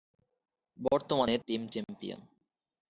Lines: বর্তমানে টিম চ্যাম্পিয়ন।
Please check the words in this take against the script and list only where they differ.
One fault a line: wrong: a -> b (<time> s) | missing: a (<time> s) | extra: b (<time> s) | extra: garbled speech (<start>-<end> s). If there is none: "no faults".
no faults